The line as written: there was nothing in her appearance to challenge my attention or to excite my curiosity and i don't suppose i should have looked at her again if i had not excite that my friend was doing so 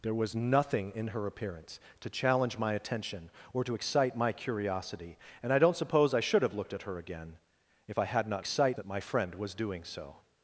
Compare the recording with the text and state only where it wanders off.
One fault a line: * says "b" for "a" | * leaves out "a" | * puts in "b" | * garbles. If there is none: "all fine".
all fine